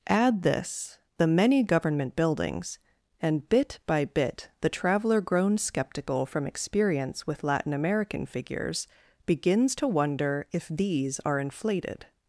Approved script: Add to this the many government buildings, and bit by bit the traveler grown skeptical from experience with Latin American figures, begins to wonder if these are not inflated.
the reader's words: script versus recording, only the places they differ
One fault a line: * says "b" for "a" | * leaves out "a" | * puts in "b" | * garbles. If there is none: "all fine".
* leaves out "to"
* leaves out "not"